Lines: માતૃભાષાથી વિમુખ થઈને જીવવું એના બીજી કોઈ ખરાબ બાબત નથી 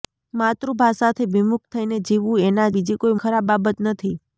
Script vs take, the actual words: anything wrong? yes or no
no